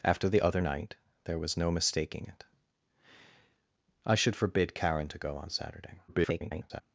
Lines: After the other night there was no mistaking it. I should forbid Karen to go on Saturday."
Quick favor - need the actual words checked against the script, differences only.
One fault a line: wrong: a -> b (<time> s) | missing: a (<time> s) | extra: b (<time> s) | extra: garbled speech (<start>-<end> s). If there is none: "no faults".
extra: garbled speech (6.1-6.8 s)